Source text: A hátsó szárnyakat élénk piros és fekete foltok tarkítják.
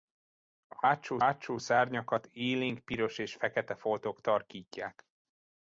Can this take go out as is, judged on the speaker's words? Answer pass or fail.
fail